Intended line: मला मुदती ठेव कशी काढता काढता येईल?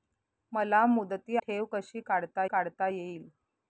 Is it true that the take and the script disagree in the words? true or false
false